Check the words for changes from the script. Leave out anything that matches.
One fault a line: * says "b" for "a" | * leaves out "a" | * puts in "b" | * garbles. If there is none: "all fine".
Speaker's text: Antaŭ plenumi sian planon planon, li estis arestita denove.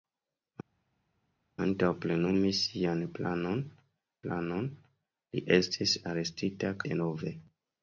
all fine